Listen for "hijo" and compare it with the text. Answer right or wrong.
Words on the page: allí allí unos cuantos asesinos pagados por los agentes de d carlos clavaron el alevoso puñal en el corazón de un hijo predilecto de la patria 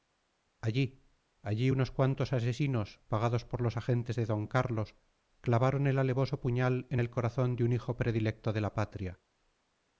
right